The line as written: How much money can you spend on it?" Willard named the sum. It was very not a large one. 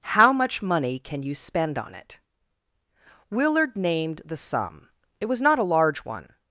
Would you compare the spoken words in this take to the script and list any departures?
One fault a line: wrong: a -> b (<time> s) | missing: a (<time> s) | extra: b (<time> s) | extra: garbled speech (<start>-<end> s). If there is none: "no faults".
missing: very (5.4 s)